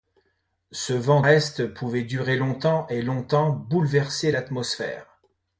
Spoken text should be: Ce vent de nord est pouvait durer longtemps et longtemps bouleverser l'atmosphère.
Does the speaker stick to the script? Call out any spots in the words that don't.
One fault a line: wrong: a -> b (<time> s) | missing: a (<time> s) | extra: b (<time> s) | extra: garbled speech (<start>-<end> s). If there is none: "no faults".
missing: de nord (1.2 s)